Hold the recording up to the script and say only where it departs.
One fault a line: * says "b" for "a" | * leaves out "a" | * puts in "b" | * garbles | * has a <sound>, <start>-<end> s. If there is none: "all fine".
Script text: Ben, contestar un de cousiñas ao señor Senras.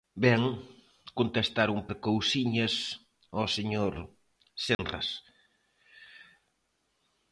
* has a dropout, 4.7-4.8 s